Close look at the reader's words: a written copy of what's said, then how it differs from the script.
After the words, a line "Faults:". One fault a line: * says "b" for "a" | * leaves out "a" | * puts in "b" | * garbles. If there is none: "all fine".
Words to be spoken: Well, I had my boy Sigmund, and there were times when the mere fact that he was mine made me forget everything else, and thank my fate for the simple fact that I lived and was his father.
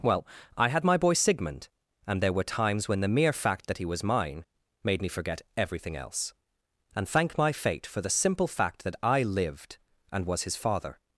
Well, I had my boy Sigmund, and there were times when the mere fact that he was mine made me forget everything else, and thank my fate for the simple fact that I lived and was his father.
Faults:
all fine